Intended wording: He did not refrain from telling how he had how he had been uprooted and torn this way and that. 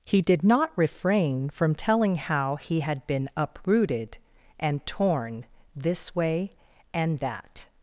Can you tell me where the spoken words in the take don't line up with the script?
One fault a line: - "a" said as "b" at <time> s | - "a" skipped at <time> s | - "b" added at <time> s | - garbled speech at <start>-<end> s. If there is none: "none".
- "how he had" skipped at 3.0 s